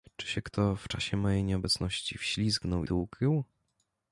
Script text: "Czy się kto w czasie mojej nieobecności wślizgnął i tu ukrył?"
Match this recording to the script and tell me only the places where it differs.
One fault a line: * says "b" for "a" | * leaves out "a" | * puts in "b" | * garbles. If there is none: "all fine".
* leaves out "i"